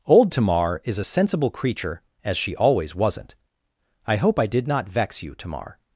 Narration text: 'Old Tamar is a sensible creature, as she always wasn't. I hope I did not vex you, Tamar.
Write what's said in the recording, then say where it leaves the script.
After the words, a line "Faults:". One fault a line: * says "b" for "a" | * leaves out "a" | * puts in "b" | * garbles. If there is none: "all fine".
'Old Tamar is a sensible creature, as she always wasn't. I hope I did not vex you, Tamar.
Faults:
all fine